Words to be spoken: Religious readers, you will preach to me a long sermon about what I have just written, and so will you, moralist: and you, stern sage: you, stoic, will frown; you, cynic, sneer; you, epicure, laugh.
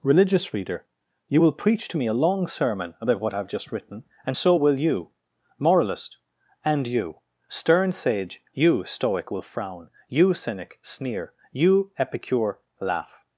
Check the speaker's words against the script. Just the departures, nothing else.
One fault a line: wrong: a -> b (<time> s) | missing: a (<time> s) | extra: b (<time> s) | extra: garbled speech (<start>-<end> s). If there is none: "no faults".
wrong: readers -> reader (0.5 s)